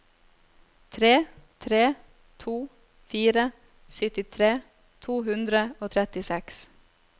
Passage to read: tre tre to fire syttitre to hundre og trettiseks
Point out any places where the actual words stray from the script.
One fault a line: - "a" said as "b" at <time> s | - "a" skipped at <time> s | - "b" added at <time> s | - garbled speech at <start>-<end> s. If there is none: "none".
none